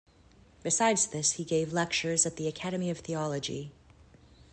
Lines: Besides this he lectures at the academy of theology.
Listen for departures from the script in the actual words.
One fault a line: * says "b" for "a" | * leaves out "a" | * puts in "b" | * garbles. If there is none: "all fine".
* puts in "gave"